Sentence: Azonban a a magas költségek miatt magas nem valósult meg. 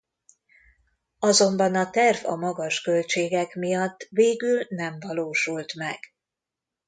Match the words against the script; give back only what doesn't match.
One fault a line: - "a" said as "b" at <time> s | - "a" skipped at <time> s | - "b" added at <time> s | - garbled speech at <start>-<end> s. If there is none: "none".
- "terv" added at 1.9 s
- "magas" said as "végül" at 4.1 s